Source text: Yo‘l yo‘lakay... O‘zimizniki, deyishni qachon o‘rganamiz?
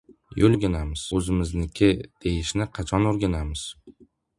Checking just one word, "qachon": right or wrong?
right